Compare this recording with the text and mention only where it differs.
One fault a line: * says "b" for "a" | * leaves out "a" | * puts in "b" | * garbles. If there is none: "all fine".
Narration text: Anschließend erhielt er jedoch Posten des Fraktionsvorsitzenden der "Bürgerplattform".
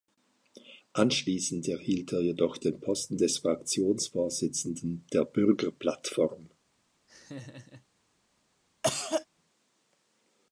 * puts in "den"